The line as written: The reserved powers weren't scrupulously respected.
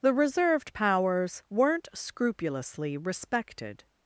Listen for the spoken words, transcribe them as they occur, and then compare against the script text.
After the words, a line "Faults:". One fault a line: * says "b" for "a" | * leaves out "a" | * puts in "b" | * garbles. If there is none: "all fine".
The reserved powers weren't scrupulously respected.
Faults:
all fine